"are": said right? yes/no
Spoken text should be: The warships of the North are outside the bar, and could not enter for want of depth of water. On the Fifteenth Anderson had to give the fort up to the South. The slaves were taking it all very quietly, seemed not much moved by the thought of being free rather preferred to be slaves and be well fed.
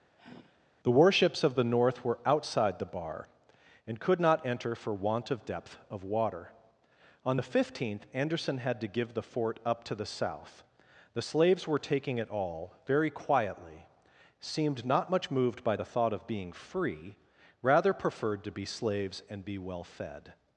no